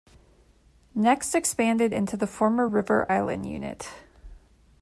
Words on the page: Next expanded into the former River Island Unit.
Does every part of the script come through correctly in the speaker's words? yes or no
yes